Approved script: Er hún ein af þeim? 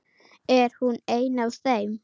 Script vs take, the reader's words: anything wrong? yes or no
no